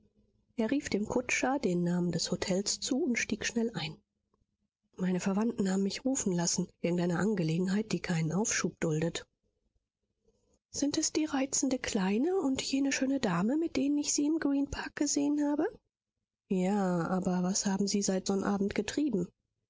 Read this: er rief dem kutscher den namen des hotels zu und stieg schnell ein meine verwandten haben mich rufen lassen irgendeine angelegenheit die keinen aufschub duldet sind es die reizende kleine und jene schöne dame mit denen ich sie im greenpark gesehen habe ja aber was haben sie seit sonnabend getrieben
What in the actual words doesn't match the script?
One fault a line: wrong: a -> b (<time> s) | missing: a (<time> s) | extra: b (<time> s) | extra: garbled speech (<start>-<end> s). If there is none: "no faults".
no faults